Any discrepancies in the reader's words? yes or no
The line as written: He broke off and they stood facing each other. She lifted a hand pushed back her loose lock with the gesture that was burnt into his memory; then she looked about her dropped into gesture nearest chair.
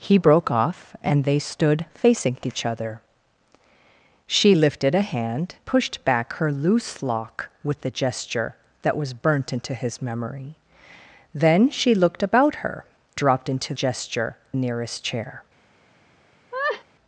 no